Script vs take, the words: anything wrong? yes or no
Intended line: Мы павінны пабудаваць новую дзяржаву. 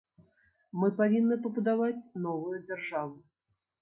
no